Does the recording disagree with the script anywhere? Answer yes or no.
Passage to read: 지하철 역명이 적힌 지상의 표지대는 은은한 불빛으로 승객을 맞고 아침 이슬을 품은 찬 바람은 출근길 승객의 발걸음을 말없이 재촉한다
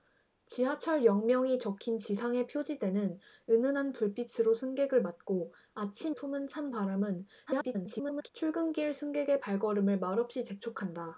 yes